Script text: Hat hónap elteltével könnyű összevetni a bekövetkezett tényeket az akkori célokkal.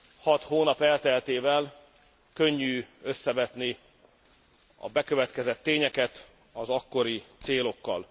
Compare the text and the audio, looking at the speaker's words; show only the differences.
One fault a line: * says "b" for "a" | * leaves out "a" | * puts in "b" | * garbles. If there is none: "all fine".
all fine